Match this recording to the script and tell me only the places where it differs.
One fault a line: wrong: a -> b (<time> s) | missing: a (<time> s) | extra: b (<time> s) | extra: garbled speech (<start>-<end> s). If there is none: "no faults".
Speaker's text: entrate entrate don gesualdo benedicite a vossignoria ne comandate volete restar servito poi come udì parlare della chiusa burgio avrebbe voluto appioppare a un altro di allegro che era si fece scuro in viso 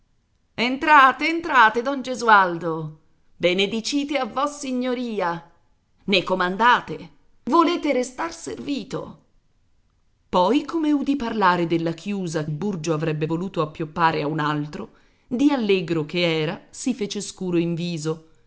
no faults